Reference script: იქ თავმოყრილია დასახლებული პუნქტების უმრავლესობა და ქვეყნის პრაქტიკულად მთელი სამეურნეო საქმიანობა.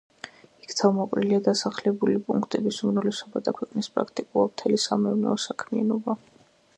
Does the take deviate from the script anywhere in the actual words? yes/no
no